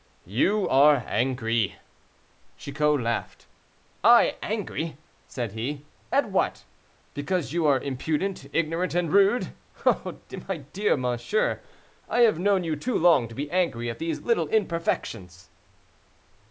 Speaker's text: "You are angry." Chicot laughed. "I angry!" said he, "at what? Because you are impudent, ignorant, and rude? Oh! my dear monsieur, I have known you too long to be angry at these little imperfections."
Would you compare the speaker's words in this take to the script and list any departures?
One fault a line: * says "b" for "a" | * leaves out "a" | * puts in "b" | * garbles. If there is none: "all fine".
all fine